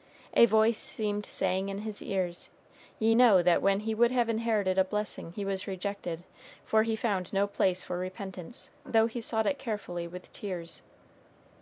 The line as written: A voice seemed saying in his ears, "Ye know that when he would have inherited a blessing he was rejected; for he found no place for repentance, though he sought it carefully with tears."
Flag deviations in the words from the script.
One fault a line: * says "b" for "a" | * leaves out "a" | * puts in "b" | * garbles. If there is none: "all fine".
all fine